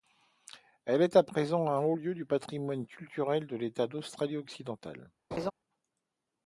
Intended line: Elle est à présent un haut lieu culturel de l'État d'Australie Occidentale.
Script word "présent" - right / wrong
right